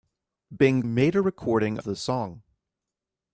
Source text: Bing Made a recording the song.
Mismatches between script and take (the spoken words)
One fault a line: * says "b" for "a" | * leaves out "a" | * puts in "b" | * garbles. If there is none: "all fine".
all fine